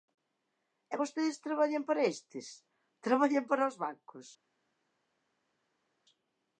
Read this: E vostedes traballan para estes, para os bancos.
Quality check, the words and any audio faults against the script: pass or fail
fail